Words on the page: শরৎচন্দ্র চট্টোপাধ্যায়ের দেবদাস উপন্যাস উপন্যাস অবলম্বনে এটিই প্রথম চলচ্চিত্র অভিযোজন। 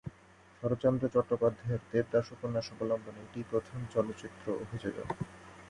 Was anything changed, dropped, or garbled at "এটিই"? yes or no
no